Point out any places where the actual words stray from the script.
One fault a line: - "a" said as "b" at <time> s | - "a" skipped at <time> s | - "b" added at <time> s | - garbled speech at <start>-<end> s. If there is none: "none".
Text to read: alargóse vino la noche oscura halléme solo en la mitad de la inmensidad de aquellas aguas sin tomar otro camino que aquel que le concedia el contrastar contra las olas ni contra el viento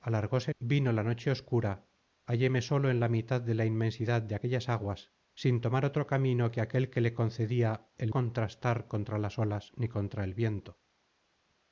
none